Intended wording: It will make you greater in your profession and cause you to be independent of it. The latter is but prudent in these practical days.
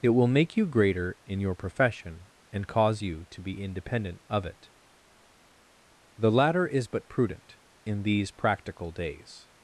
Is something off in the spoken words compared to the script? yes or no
no